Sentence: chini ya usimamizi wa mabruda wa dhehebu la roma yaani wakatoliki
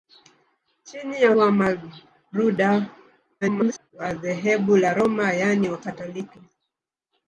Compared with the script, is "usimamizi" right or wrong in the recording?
wrong